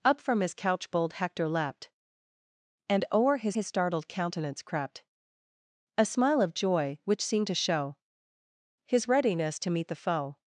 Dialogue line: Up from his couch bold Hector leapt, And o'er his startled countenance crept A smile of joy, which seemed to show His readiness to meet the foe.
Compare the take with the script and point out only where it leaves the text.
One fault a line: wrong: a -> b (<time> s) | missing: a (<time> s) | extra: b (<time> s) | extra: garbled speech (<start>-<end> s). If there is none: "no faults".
extra: his (3.5 s)